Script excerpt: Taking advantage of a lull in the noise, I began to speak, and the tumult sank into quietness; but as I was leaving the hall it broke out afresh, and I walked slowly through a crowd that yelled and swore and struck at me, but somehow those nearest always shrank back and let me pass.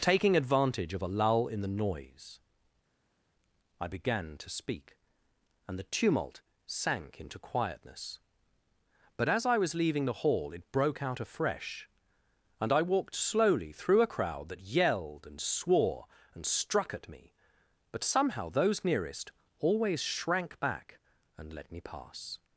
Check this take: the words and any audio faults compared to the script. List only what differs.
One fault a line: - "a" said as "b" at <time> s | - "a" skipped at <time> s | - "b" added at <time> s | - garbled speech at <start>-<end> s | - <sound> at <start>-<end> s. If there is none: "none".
none